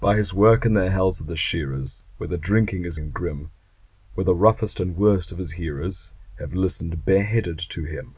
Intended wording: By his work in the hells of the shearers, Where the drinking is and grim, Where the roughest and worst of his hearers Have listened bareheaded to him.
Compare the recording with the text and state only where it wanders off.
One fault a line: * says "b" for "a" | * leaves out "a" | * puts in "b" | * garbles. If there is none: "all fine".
all fine